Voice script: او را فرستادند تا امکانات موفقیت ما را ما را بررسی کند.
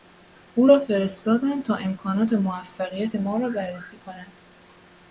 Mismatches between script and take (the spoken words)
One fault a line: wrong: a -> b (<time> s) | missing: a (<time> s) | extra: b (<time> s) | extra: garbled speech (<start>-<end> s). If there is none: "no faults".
missing: ما را (3.5 s)